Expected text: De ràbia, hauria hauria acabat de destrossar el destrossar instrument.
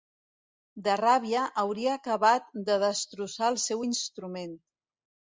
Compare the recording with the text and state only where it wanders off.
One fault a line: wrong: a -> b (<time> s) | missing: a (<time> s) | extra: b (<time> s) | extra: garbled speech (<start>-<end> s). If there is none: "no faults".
missing: hauria (1.9 s)
wrong: destrossar -> seu (3.6 s)